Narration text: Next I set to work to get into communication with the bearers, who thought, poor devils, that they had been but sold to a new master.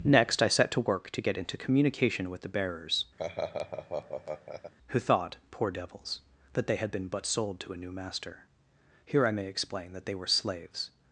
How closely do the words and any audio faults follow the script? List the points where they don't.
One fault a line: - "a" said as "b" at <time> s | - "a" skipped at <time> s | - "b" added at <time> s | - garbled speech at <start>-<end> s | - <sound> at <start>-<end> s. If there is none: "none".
- laugh at 3.2-4.7 s
- "Here I may explain that they were slaves" added at 9.0 s